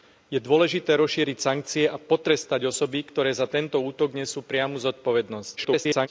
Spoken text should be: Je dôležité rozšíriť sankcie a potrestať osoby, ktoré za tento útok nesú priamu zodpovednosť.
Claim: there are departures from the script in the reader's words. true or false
true